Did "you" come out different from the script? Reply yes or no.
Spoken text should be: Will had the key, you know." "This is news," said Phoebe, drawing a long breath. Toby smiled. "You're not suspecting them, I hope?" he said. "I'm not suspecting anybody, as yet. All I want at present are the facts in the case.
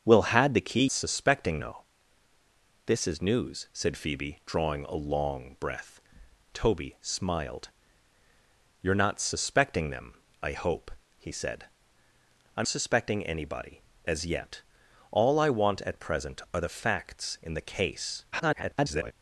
yes